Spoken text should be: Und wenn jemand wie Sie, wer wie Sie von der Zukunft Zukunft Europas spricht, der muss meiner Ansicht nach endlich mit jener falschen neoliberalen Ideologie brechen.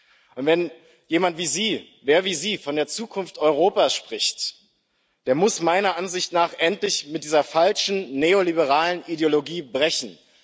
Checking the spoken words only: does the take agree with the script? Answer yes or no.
no